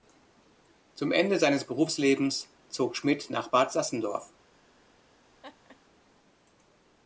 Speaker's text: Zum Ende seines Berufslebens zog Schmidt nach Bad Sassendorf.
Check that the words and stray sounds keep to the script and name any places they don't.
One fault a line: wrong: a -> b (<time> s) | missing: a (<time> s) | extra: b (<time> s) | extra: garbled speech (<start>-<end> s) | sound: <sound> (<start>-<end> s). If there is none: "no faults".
sound: laugh (5.4-5.8 s)